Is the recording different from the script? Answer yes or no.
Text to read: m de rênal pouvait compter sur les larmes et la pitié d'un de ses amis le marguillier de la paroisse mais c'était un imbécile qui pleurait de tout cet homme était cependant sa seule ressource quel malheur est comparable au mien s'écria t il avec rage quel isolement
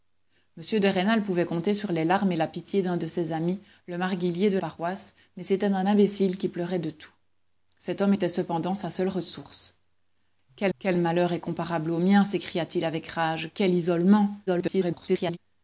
yes